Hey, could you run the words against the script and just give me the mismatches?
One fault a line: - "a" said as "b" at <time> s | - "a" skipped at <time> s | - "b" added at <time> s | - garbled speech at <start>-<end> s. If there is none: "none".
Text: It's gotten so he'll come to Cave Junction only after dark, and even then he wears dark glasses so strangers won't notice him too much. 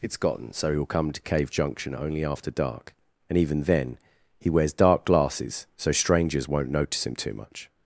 none